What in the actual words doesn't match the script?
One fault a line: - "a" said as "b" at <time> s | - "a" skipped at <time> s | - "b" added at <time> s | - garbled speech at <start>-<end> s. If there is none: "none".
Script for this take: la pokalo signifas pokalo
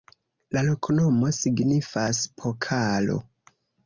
- "pokalo" said as "loknomo" at 0.7 s